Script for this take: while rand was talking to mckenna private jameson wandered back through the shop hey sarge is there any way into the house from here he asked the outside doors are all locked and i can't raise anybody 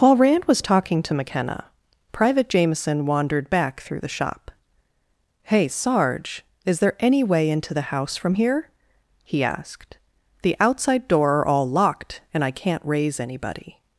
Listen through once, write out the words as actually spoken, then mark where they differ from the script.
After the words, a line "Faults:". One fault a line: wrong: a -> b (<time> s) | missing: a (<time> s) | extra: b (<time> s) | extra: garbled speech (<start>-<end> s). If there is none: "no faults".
while rand was talking to mckenna private jameson wandered back through the shop hey sarge is there any way into the house from here he asked the outside door are all locked and i can't raise anybody
Faults:
wrong: doors -> door (11.1 s)